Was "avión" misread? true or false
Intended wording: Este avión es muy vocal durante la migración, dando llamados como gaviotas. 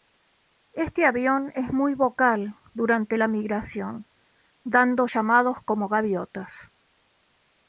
false